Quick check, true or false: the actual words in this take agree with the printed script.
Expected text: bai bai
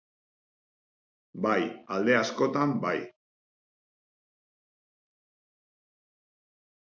false